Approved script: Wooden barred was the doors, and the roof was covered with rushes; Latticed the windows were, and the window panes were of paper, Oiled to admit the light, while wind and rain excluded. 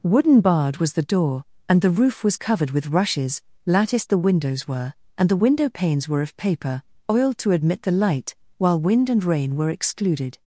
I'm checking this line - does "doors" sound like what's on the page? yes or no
no